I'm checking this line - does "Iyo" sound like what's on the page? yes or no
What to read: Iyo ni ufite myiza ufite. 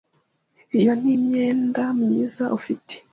yes